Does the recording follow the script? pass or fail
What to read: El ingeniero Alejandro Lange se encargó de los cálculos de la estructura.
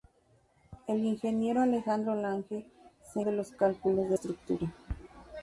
fail